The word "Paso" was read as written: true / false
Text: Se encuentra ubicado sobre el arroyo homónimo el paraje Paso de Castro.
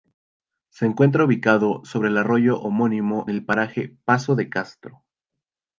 true